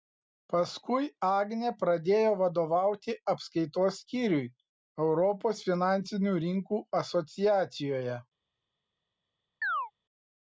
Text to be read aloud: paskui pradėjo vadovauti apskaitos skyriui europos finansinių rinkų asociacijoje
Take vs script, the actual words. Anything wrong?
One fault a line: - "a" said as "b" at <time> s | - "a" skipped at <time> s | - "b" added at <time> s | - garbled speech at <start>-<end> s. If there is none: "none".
- "agnė" added at 1.3 s